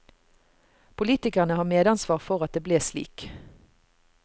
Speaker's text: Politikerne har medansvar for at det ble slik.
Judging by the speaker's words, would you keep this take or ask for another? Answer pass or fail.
pass